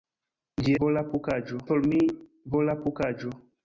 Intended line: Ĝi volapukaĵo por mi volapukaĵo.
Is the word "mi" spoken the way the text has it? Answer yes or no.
yes